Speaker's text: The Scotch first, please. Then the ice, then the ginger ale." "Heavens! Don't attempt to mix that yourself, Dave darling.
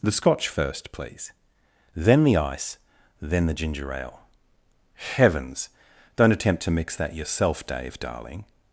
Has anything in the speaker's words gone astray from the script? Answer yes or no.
no